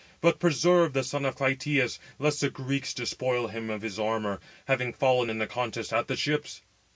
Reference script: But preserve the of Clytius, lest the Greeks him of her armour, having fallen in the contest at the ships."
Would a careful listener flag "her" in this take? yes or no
yes